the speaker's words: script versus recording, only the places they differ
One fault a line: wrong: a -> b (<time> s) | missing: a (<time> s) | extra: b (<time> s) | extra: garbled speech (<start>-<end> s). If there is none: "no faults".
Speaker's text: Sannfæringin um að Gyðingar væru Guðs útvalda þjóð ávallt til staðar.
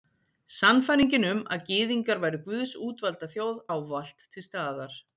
no faults